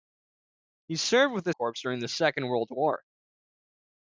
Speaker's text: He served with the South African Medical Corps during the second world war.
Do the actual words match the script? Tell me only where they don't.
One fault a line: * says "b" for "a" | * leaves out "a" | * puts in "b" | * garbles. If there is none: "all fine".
* leaves out "South African Medical"